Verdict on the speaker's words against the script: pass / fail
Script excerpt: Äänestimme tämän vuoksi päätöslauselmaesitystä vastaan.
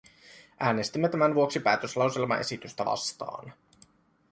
pass